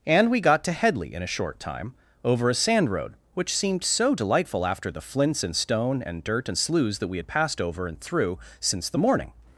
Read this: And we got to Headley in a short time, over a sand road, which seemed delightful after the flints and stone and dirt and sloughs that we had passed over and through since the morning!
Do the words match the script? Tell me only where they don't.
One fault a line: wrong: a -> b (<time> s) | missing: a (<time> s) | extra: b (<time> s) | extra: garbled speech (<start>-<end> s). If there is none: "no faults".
extra: so (3.8 s)